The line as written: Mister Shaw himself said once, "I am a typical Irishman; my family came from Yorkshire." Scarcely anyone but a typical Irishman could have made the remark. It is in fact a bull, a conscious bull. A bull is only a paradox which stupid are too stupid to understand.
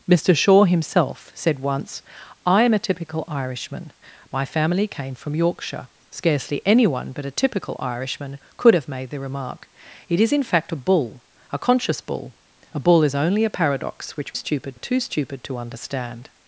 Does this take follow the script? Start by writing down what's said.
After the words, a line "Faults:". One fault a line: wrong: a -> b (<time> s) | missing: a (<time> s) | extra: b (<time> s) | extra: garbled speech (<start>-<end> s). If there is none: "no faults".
Mister Shaw himself said once, "I am a typical Irishman; my family came from Yorkshire." Scarcely anyone but a typical Irishman could have made the remark. It is in fact a bull, a conscious bull. A bull is only a paradox which stupid are too stupid to understand.
Faults:
no faults